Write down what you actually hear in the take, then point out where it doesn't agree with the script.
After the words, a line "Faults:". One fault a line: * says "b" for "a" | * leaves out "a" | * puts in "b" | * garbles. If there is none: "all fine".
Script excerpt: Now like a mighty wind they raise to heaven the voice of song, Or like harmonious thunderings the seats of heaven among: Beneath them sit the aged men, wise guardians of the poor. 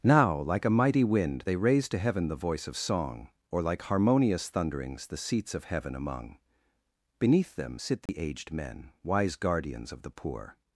Now like a mighty wind they raise to heaven the voice of song, Or like harmonious thunderings the seats of heaven among: Beneath them sit the aged men, wise guardians of the poor.
Faults:
all fine